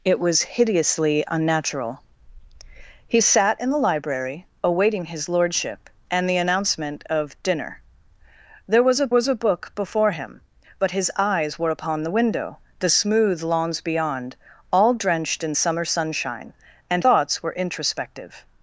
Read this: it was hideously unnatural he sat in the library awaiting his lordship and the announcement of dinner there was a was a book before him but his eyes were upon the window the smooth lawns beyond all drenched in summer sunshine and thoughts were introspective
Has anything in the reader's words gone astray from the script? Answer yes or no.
no